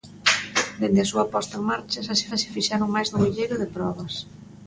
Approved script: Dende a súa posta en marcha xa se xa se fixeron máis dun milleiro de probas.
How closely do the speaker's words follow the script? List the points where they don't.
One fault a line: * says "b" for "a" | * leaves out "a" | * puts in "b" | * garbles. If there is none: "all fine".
all fine